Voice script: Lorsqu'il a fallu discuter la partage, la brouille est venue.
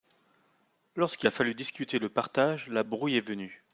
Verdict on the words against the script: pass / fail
fail